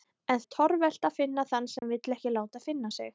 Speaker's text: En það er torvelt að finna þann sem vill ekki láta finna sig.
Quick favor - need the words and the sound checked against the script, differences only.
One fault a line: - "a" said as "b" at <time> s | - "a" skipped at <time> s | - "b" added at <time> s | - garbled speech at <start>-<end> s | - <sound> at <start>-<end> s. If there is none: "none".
- "það" skipped at 0.4 s
- dropout at 1.8-1.8 s